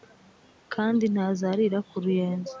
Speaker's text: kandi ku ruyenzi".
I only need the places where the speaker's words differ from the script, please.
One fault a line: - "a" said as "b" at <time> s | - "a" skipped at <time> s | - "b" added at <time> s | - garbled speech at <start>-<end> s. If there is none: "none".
- "ntazarira" added at 1.1 s